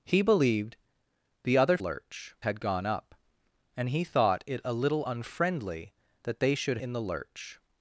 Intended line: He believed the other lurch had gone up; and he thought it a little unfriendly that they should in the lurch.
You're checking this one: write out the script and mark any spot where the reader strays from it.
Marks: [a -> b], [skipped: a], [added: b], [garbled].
He believed the other lurch had gone up; and he thought it a little unfriendly that they should in the lurch.